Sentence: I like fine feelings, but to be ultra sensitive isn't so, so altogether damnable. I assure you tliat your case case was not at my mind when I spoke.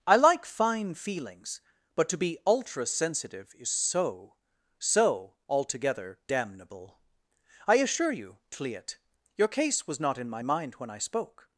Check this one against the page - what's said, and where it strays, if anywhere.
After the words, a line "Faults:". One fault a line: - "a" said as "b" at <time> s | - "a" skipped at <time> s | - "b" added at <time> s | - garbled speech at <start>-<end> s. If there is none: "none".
I like fine feelings, but to be ultra sensitive is so, so altogether damnable. I assure you tliat your case was not in my mind when I spoke.
Faults:
- "isn't" said as "is" at 3.6 s
- "case" skipped at 9.9 s
- "at" said as "in" at 10.2 s